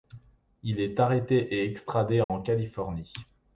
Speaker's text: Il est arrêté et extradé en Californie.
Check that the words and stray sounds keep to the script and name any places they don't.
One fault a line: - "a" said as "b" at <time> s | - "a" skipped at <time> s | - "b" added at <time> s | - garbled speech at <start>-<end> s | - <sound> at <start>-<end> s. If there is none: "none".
- dropout at 2.2-2.3 s